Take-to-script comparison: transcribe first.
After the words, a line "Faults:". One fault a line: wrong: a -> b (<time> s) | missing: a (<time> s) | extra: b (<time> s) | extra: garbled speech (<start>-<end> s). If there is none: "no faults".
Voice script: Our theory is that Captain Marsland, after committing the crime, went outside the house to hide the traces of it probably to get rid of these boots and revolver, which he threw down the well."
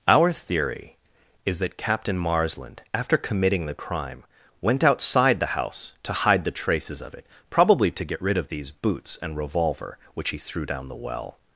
Our theory is that Captain Marsland, after committing the crime, went outside the house to hide the traces of it probably to get rid of these boots and revolver, which he threw down the well."
Faults:
no faults